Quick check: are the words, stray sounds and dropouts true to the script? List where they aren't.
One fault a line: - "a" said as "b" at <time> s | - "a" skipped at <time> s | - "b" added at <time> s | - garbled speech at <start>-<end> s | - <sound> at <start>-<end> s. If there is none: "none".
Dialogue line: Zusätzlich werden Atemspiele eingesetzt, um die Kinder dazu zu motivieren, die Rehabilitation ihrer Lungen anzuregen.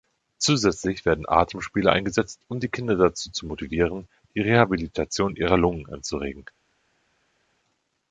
none